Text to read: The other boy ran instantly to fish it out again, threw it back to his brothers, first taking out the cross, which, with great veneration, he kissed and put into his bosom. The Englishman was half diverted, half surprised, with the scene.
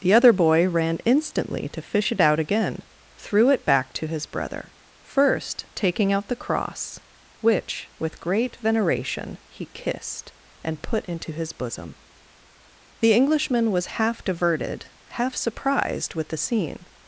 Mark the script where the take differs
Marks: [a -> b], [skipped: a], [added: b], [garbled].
The other boy ran instantly to fish it out again, threw it back to his [brothers, -> brother] first taking out the cross, which, with great veneration, he kissed and put into his bosom. The Englishman was half diverted, half surprised, with the scene.